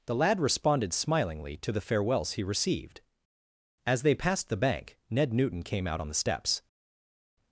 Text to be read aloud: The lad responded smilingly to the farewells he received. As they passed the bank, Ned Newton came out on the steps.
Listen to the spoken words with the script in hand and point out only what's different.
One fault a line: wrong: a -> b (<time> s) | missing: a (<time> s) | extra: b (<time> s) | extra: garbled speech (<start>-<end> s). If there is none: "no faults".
no faults